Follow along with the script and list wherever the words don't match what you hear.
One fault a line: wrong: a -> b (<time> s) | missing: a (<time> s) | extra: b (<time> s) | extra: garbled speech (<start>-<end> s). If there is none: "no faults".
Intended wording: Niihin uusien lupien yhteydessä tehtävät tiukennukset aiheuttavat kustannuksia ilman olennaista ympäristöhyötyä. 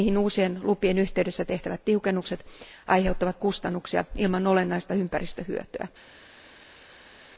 no faults